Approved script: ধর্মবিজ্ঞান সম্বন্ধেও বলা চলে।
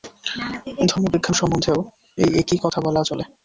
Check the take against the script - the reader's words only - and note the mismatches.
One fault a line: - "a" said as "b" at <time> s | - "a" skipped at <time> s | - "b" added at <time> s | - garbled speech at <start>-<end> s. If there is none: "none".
- "এই একই কথা" added at 2.2 s